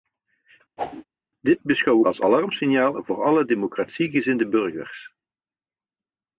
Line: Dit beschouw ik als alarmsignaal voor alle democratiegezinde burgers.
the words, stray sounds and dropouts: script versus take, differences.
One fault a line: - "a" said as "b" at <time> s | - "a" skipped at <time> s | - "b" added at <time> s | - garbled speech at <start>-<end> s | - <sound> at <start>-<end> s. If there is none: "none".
- whoosh at 0.8-1.0 s